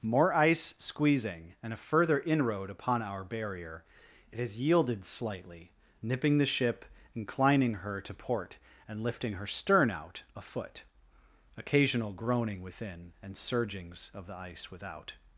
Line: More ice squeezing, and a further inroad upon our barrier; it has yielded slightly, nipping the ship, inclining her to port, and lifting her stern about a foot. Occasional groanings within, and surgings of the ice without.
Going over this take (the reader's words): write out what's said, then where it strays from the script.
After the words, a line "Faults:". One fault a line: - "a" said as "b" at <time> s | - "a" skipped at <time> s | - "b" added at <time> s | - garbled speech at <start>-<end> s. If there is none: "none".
More ice squeezing, and a further inroad upon our barrier; it has yielded slightly, nipping the ship, inclining her to port, and lifting her stern out a foot. Occasional groaning within, and surgings of the ice without.
Faults:
- "about" said as "out" at 9.9 s
- "groanings" said as "groaning" at 12.1 s